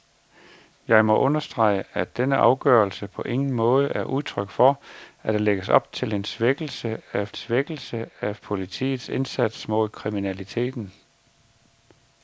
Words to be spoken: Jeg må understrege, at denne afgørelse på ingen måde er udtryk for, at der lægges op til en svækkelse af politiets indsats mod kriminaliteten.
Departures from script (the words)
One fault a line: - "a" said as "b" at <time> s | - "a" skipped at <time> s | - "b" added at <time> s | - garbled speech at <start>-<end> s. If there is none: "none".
- "svækkelse af" added at 7.3 s